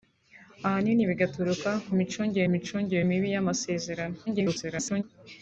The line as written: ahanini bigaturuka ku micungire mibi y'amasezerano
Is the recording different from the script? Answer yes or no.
yes